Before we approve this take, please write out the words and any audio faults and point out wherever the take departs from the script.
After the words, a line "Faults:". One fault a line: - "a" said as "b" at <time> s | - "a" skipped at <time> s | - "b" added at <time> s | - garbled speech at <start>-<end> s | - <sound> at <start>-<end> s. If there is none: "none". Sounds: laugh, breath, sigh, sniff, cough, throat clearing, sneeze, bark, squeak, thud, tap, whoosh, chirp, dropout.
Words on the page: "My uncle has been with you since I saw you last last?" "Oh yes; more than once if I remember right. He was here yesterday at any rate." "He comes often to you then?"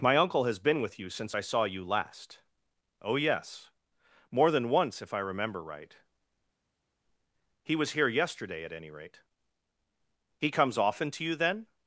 "My uncle has been with you since I saw you last?" "Oh yes; more than once if I remember right. He was here yesterday at any rate." "He comes often to you then?"
Faults:
- "last" skipped at 2.4 s